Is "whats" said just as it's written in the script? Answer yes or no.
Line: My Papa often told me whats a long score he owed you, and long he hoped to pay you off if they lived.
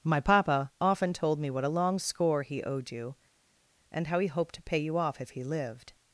no